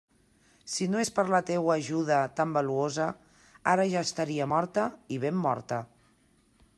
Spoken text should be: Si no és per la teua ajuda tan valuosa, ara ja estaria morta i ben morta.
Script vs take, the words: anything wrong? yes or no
no